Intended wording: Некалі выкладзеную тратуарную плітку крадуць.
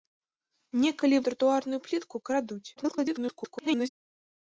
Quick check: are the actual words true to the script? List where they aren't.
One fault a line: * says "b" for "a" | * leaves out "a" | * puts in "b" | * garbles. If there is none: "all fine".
* leaves out "выкладзеную"
* garbles